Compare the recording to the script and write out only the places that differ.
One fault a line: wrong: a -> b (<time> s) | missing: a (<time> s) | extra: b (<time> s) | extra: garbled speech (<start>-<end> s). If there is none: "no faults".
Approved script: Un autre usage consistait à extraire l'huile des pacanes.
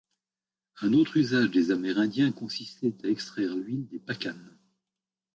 extra: des Amérindiens (1.5 s)